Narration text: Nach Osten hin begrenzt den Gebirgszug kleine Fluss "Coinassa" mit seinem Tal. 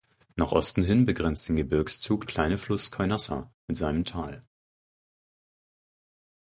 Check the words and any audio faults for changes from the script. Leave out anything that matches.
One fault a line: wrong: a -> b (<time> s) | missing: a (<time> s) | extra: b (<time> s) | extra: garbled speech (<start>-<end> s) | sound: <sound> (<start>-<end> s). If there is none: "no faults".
no faults